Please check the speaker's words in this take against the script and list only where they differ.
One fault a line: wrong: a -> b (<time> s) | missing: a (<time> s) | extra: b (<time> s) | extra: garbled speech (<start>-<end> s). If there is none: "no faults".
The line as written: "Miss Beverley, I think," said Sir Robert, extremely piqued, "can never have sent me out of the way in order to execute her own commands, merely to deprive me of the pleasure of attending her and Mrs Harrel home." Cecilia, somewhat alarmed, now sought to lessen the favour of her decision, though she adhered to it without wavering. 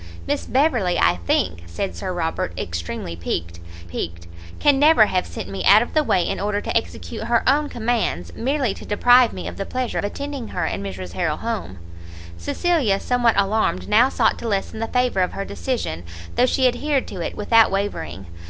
extra: piqued (3.8 s)
missing: of (10.0 s)